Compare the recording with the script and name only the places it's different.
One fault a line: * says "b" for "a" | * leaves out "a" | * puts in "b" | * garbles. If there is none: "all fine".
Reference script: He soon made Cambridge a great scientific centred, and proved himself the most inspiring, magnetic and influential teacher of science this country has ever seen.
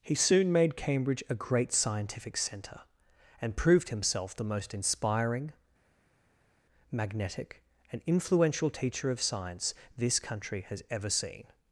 * says "centre" for "centred"